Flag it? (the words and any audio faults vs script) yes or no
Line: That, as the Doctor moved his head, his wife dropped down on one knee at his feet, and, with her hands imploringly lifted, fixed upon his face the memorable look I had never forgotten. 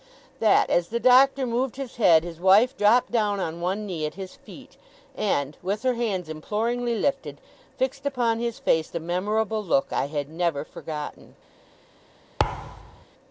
yes